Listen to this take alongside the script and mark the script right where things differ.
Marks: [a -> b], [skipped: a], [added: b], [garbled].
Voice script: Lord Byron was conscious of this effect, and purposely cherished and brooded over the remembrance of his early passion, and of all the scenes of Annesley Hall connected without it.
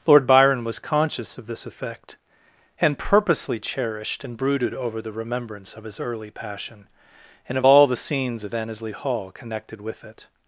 Lord Byron was conscious of this effect, and purposely cherished and brooded over the remembrance of his early passion, and of all the scenes of Annesley Hall connected [without -> with] it.